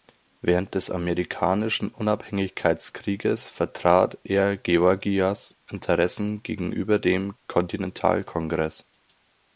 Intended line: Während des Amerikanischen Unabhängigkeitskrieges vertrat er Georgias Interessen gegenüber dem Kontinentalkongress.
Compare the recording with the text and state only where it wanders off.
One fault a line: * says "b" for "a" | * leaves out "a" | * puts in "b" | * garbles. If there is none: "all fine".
all fine